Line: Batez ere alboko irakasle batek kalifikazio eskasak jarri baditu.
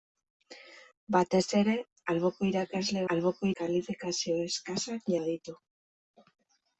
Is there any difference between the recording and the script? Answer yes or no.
yes